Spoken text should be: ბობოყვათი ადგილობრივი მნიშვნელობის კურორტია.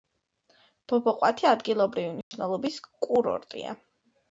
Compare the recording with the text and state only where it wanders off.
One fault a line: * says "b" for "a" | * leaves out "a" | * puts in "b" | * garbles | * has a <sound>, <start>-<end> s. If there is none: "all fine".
* has a dropout, 2.2-2.3 s